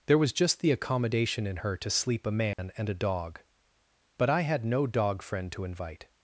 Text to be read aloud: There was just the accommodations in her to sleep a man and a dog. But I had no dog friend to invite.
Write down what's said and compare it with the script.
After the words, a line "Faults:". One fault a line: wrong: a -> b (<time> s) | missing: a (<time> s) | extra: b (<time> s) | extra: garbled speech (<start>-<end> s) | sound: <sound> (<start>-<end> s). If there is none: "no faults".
There was just the accommodation in her to sleep a man and a dog. But I had no dog friend to invite.
Faults:
wrong: accommodations -> accommodation (0.7 s)
sound: dropout (2.5-2.6 s)